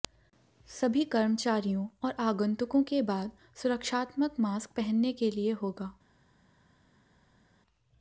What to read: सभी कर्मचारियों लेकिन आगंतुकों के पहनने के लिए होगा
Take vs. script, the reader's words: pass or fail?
fail